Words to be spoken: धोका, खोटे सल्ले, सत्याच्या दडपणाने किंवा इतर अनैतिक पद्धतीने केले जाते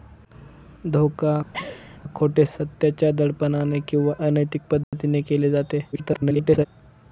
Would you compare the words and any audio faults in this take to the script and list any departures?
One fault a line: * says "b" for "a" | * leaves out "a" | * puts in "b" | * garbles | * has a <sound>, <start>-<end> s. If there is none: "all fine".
* has a laugh, 1.5-2.0 s
* leaves out "सल्ले"
* leaves out "इतर"
* has a dropout, 4.8-4.9 s
* garbles